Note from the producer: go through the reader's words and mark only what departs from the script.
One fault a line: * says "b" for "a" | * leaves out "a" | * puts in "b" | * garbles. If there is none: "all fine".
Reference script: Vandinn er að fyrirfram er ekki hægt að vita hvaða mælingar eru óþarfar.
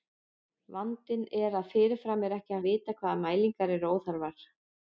* leaves out "hægt"